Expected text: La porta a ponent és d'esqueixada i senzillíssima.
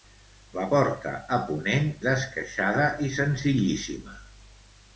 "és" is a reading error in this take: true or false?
true